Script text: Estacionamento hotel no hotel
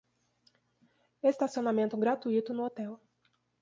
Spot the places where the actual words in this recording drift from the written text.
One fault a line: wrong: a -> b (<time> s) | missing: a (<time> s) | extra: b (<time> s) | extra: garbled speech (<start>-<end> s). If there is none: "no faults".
wrong: hotel -> gratuito (1.9 s)